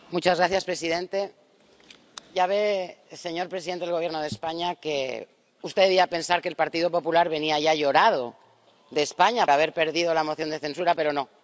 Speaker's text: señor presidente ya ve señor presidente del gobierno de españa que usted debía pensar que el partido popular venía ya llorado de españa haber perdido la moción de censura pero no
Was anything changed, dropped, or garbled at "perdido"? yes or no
no